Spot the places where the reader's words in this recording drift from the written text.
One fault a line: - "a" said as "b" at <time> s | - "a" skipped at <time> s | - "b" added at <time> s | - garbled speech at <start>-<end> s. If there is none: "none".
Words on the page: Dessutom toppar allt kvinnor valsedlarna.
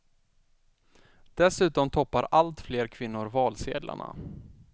- "fler" added at 2.6 s